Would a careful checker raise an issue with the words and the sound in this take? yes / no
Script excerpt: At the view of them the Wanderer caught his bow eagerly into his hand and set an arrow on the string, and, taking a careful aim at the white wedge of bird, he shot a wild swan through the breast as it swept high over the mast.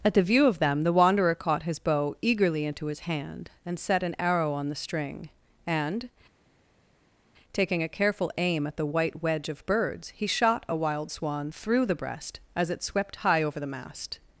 yes